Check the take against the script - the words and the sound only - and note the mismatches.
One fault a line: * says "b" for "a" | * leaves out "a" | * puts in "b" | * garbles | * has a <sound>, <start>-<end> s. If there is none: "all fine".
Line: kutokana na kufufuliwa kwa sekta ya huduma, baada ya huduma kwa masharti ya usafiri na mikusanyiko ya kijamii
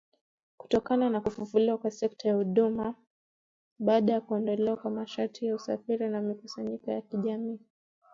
* says "kuondolewa" for "huduma"